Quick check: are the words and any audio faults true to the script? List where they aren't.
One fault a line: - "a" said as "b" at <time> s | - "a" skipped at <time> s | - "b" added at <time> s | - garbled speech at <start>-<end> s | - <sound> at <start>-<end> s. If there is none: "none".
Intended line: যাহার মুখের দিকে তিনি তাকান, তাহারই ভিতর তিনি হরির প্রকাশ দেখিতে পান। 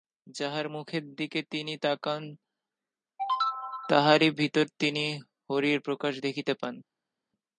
none